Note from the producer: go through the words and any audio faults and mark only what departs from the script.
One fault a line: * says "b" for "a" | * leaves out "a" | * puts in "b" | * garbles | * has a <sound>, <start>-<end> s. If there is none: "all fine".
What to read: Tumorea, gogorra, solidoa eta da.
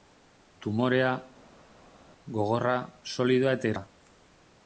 all fine